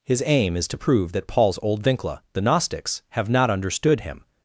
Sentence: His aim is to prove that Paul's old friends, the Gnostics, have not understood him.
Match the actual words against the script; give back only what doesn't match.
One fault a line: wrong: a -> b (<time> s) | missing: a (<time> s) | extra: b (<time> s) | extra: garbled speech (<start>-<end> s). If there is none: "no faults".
wrong: friends -> vincla (1.8 s)